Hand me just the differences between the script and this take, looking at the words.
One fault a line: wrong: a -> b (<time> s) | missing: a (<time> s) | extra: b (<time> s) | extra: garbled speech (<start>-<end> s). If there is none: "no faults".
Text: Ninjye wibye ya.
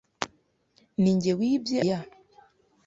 no faults